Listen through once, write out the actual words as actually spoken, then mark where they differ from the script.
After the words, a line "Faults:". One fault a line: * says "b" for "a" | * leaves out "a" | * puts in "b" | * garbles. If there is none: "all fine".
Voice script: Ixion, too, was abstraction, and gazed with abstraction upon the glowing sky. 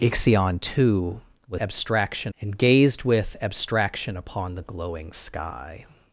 Ixion, too, was abstraction, and gazed with abstraction upon the glowing sky.
Faults:
all fine